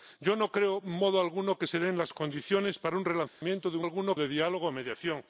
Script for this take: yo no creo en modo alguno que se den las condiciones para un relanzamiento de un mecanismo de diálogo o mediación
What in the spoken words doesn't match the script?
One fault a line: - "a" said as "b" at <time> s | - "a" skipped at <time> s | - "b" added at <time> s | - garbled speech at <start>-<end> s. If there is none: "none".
- "mecanismo" said as "alguno" at 3.8 s